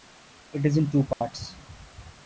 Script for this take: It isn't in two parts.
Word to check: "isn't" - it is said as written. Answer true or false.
false